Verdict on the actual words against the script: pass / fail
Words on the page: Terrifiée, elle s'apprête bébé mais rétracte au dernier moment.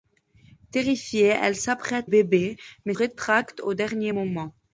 pass